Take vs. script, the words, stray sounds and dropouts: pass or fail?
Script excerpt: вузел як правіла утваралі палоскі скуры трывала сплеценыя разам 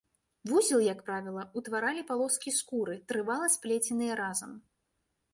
pass